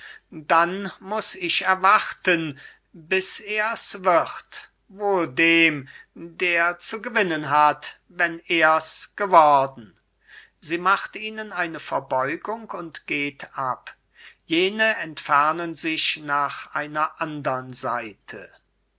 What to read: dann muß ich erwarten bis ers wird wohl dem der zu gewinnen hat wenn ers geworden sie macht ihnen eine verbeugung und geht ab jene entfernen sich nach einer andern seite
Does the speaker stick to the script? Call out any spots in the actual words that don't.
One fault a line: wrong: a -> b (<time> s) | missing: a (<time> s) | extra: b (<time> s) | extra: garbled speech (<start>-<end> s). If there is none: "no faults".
no faults